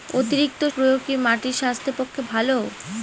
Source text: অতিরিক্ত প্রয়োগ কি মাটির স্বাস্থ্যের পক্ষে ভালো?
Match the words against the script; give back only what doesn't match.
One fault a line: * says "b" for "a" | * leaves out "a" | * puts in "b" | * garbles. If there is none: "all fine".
all fine